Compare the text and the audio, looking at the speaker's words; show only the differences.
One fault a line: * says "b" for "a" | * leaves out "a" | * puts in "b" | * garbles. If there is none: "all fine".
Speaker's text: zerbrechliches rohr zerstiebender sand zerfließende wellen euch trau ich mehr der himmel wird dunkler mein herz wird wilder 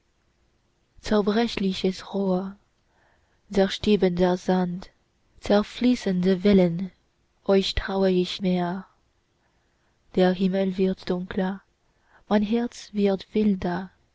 all fine